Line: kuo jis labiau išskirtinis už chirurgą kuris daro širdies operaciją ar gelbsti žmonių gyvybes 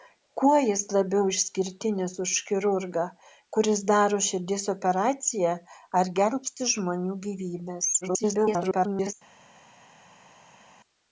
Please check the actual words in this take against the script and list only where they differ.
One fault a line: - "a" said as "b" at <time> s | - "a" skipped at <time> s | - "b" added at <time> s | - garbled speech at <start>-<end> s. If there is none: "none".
- garbled speech at 8.0-9.1 s